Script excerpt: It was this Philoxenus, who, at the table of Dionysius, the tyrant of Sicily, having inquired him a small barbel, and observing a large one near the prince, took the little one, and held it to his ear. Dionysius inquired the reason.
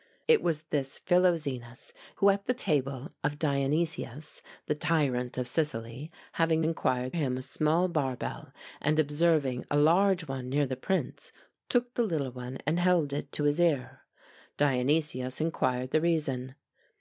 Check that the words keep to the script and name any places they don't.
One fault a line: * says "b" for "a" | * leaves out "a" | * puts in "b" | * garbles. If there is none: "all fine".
all fine